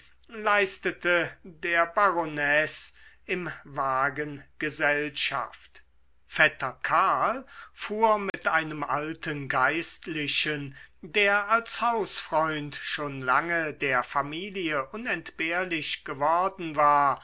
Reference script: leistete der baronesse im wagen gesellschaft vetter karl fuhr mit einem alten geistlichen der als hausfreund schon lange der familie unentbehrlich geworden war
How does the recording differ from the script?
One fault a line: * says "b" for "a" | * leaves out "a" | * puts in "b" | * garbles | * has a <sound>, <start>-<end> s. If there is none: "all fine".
* has a dropout, 8.3-8.3 s